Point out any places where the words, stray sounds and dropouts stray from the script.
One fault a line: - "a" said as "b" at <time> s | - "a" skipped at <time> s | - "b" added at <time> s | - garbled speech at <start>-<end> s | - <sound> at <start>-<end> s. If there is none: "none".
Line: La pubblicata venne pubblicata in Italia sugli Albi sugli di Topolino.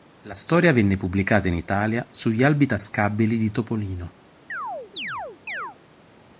- "pubblicata" said as "storia" at 0.3 s
- "sugli" said as "tascabili" at 2.7 s
- chirp at 4.5-5.8 s